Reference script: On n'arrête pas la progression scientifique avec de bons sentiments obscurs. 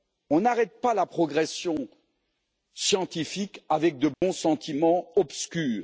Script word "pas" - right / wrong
right